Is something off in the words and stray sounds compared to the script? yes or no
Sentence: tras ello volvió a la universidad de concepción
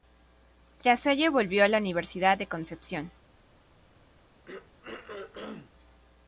yes